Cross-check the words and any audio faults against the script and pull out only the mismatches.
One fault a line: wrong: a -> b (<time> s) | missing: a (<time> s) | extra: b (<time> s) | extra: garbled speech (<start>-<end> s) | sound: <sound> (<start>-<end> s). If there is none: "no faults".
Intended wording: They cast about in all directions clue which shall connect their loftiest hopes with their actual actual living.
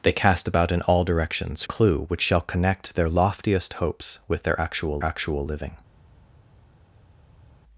no faults